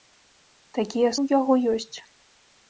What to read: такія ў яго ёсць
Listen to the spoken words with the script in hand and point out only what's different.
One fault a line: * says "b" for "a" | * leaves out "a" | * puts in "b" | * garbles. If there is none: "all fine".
all fine